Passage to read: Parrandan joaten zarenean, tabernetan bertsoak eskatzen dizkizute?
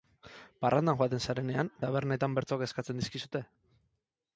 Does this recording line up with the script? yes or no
yes